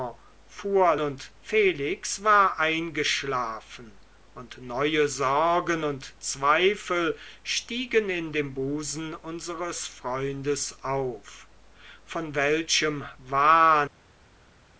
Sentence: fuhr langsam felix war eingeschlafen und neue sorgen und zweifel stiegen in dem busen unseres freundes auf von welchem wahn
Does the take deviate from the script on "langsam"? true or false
true